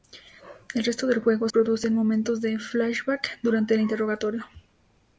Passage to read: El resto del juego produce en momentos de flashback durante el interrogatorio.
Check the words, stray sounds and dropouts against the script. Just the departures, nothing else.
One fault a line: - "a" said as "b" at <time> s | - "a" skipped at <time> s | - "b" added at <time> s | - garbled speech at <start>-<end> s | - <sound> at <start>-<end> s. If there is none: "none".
none